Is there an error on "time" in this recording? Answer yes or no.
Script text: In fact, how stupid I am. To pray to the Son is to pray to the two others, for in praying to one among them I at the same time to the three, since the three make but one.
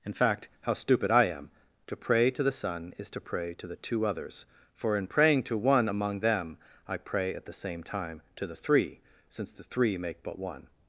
no